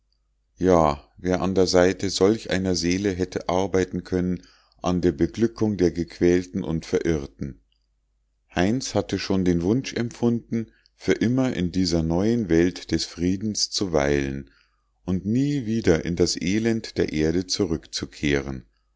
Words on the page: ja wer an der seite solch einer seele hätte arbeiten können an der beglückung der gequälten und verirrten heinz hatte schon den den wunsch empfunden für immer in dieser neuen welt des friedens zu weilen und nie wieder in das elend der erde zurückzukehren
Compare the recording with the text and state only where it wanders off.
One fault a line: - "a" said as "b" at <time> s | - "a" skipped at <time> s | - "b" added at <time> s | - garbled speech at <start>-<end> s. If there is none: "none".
- "den" skipped at 9.6 s